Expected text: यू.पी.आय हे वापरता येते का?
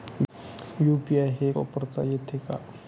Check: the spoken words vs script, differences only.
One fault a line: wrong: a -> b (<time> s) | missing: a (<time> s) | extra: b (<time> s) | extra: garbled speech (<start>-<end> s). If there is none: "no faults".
no faults